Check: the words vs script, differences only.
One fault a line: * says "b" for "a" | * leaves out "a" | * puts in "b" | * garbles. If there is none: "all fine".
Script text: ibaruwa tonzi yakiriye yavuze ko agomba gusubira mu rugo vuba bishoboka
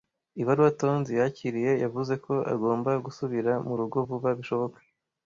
all fine